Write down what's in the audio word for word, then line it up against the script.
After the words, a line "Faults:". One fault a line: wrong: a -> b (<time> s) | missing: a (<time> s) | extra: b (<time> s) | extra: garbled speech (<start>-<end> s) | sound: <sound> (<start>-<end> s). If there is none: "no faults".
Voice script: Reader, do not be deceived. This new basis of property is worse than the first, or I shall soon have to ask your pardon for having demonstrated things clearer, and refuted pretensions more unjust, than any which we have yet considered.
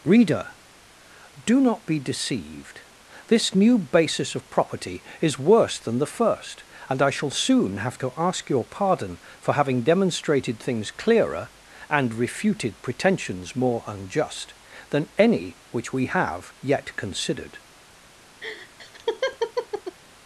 Reader, do not be deceived. This new basis of property is worse than the first, and I shall soon have to ask your pardon for having demonstrated things clearer, and refuted pretensions more unjust, than any which we have yet considered.
Faults:
wrong: or -> and (6.9 s)
sound: laugh (18.4-20.0 s)